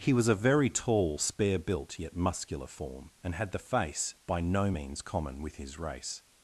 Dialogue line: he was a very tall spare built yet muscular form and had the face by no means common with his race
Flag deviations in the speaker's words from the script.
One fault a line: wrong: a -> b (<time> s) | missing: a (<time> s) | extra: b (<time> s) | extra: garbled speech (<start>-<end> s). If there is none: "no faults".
no faults